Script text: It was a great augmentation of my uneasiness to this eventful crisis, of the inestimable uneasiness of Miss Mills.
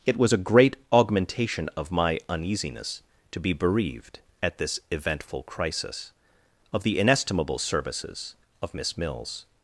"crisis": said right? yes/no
yes